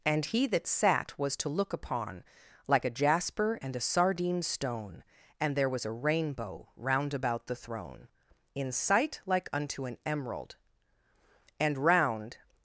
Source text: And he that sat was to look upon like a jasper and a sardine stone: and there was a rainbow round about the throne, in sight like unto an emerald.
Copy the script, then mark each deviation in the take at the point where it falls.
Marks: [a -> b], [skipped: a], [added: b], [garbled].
And he that sat was to look upon like a jasper and a sardine stone: and there was a rainbow round about the throne, in sight like unto an emerald. [added: And round]